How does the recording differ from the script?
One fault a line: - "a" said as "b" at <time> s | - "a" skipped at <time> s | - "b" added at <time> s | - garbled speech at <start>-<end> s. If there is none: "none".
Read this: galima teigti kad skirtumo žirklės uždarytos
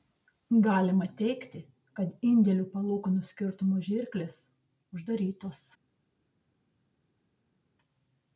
- "indėlių palūkanų" added at 2.3 s